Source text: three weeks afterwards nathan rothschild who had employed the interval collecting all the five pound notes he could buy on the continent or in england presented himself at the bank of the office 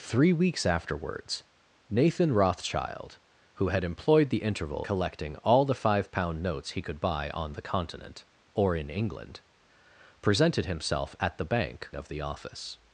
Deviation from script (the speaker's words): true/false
false